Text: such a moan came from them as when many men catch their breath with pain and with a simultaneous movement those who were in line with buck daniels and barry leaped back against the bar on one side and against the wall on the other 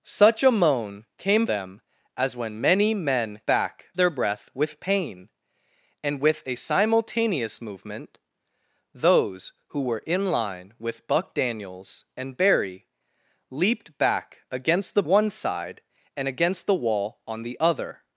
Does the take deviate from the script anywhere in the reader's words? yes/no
yes